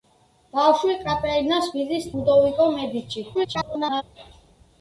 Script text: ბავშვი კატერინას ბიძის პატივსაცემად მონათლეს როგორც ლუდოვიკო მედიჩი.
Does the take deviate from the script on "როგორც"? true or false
true